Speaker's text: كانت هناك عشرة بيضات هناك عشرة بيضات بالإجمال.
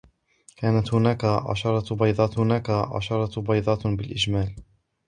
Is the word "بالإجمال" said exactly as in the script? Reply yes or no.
yes